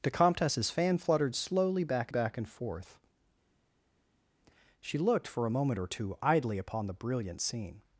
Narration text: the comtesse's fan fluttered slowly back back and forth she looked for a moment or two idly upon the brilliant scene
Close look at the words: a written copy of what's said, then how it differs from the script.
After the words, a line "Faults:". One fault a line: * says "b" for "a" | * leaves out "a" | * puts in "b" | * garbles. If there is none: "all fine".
the comtesse's fan fluttered slowly back back and forth she looked for a moment or two idly upon the brilliant scene
Faults:
all fine